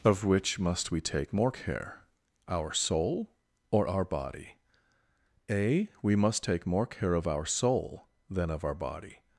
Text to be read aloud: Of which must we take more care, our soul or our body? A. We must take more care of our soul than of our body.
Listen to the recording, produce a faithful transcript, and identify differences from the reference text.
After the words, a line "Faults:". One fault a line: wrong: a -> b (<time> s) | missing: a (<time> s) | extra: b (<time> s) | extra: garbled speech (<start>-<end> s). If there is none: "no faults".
Of which must we take more care, our soul or our body? A. We must take more care of our soul than of our body.
Faults:
no faults